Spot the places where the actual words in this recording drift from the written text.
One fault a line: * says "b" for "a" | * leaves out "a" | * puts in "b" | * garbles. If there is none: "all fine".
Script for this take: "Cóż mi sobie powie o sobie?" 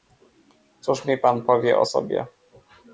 * says "pan" for "sobie"